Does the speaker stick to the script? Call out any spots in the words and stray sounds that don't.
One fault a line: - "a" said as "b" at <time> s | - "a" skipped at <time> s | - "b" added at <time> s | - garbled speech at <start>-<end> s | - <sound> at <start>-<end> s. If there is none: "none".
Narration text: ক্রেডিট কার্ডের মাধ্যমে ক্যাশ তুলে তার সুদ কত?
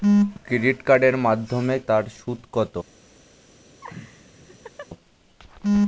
- "ক্যাশ তুলে" skipped at 1.8 s
- laugh at 3.8-4.9 s